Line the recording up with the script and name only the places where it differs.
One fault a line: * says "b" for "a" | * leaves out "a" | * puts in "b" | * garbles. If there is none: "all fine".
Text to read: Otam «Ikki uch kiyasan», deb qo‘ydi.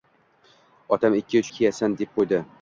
all fine